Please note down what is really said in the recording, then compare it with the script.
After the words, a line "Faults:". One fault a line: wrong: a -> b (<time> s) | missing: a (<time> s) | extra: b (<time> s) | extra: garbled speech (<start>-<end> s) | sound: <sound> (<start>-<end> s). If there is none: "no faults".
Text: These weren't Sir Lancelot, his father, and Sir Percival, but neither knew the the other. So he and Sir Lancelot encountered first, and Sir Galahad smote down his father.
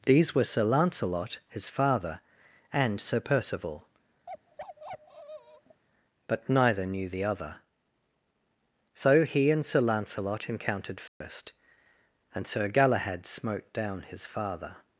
These were Sir Lancelot, his father, and Sir Percival, but neither knew the other. So he and Sir Lancelot encountered first, and Sir Galahad smote down his father.
Faults:
wrong: weren't -> were (0.3 s)
sound: bark (4.3-5.8 s)
missing: the (7.2 s)
sound: dropout (11.1-11.2 s)